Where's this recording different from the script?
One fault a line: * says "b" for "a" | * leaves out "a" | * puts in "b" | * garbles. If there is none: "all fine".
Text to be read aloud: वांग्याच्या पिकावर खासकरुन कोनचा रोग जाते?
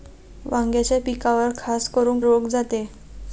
* leaves out "कोनचा"